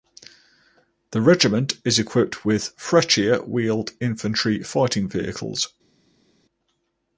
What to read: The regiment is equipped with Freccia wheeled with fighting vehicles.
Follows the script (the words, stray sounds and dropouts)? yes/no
no